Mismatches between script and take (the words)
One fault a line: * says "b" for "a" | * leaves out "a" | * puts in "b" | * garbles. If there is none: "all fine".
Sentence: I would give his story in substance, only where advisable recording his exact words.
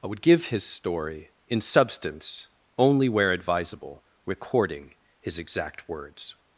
all fine